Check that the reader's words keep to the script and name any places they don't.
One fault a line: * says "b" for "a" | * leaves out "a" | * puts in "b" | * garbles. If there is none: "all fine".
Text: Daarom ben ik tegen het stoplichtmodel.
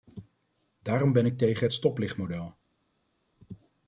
all fine